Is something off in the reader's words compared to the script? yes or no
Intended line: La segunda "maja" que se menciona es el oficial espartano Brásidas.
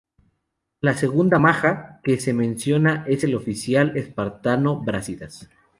no